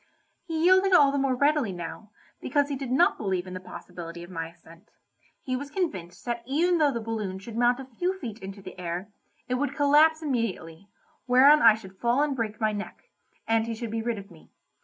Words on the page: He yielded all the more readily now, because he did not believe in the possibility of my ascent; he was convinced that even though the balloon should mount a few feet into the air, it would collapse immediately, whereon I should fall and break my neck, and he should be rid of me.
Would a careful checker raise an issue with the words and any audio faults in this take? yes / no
no